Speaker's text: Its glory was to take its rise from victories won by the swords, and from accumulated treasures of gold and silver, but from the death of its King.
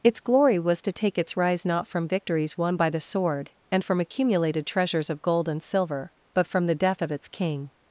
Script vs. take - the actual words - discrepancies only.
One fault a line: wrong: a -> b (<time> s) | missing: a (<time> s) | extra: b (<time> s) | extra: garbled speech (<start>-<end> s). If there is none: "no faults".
extra: not (1.6 s)
wrong: swords -> sword (3.0 s)